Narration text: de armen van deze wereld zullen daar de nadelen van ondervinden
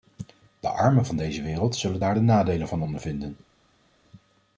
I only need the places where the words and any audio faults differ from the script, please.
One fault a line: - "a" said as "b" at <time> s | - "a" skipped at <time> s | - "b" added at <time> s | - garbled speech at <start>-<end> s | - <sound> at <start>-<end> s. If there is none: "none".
none